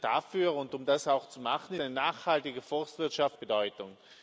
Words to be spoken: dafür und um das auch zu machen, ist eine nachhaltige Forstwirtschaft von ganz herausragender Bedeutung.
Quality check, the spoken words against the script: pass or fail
fail